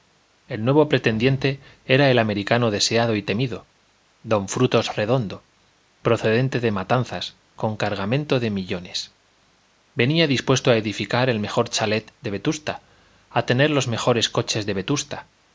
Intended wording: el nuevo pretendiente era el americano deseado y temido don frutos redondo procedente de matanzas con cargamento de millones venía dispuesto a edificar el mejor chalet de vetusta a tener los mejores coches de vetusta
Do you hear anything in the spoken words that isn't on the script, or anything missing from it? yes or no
no